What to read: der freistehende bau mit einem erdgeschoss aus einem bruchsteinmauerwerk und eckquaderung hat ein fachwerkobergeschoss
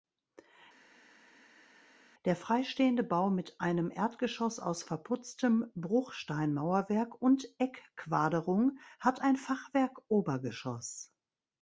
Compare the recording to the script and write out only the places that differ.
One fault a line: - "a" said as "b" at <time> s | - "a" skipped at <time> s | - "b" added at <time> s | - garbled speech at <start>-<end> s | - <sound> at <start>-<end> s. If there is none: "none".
- "einem" said as "verputztem" at 4.8 s